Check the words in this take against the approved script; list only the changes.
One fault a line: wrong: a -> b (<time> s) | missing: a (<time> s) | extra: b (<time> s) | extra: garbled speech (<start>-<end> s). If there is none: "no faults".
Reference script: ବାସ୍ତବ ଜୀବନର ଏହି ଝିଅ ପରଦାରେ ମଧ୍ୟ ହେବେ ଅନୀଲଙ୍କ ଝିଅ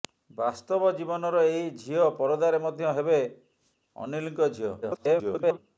extra: garbled speech (4.8-5.6 s)